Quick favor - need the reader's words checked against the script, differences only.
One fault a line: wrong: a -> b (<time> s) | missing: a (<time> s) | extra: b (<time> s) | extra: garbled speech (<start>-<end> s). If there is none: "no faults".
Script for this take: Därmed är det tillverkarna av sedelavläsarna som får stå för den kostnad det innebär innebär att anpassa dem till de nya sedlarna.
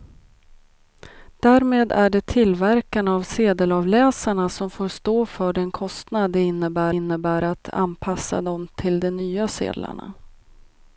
no faults